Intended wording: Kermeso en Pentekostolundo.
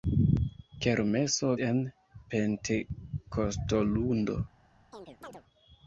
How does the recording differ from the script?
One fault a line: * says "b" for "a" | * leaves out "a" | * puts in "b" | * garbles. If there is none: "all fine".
all fine